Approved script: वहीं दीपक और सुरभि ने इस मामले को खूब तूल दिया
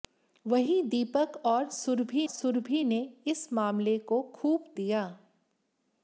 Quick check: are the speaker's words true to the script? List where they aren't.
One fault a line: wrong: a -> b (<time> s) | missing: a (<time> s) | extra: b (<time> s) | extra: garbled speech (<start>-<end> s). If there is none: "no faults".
extra: सुरभि (2.3 s)
missing: तूल (4.7 s)